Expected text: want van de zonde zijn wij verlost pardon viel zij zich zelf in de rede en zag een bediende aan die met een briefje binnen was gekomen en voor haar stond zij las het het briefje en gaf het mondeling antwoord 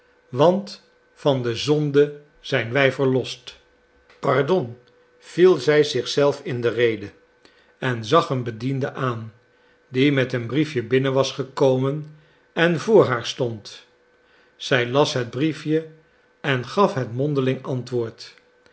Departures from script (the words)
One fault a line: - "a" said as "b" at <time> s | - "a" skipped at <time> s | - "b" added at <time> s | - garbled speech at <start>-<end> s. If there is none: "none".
- "het" skipped at 15.3 s